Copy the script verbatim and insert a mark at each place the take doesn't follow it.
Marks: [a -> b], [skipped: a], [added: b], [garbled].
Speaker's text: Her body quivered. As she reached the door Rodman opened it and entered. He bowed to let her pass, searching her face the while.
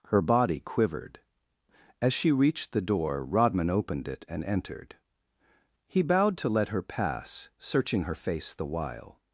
Her body quivered. As she reached the door Rodman opened it and entered. He bowed to let her pass, searching her face the while.